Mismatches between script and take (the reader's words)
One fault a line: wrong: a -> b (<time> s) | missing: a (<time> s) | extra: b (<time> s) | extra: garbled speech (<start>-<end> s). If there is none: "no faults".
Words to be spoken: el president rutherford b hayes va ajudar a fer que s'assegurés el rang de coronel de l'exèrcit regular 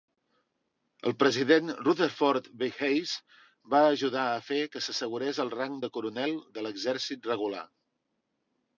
no faults